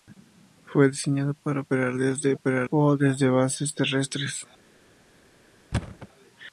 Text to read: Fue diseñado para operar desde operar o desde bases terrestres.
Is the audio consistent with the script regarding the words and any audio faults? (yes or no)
no